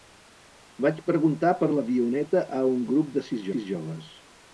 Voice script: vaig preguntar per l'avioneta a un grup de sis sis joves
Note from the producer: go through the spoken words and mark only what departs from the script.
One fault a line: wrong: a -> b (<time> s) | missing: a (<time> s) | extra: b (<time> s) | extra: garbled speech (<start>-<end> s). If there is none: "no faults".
no faults